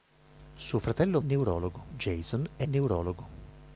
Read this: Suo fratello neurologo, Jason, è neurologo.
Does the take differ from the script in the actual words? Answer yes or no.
no